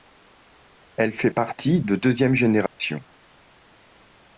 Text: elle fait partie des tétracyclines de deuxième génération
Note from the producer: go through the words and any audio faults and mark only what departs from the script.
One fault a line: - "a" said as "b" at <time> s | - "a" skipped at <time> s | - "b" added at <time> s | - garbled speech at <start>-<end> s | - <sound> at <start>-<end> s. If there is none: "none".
- "des tétracyclines" skipped at 1.8 s
- dropout at 2.7-2.8 s